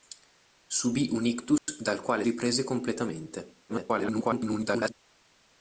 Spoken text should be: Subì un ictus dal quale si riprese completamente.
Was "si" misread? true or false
true